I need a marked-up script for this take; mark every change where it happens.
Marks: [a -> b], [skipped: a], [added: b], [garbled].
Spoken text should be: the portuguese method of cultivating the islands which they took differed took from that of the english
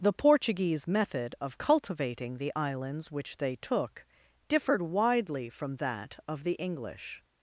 the portuguese method of cultivating the islands which they took differed [took -> widely] from that of the english